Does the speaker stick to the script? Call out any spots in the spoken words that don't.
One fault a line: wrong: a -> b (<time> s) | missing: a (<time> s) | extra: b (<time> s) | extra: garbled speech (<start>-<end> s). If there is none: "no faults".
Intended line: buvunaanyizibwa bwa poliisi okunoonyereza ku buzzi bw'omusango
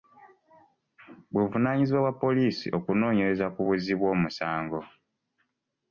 no faults